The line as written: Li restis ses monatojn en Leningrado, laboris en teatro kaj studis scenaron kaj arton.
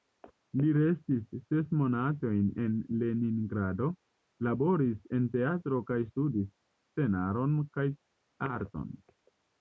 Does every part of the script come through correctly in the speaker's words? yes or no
yes